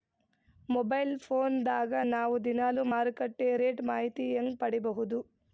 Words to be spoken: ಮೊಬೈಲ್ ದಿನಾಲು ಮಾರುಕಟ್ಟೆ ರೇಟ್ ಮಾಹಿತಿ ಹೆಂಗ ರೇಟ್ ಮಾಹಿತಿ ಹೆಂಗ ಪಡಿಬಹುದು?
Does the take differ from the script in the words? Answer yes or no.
yes